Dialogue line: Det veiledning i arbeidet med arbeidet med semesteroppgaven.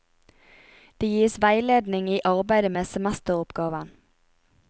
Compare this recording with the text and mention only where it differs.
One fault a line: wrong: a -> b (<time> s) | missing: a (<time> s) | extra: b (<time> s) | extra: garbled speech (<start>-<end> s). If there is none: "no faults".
extra: gis (1.1 s)
missing: arbeidet med (2.8 s)